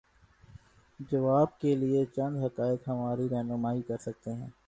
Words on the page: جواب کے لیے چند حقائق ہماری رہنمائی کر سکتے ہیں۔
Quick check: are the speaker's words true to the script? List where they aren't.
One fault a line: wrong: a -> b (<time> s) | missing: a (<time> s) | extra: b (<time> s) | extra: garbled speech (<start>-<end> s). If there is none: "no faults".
no faults